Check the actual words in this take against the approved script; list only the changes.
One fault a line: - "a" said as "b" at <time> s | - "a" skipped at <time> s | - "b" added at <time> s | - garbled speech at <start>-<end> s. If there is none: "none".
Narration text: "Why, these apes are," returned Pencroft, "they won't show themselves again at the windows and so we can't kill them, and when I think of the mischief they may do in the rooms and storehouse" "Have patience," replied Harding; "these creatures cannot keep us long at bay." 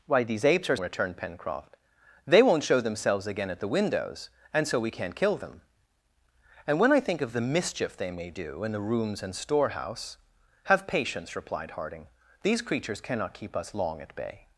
none